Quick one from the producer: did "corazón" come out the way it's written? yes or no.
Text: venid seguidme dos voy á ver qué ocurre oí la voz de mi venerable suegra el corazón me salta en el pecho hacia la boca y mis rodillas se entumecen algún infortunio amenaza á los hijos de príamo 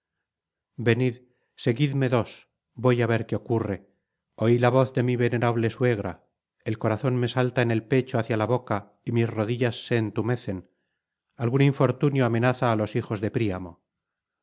yes